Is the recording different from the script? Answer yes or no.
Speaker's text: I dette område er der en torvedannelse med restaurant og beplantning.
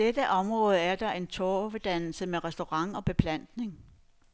no